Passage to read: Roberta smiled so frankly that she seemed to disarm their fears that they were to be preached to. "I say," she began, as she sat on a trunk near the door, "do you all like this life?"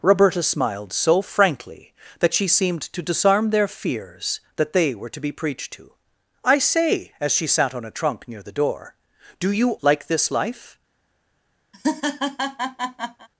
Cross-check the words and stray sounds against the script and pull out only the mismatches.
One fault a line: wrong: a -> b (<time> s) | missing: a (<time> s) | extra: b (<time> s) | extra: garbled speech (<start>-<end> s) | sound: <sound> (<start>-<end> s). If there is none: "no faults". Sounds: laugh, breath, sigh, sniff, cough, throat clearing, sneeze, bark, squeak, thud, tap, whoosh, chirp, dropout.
missing: she began (7.1 s)
missing: all (9.7 s)
sound: laugh (11.7-13.3 s)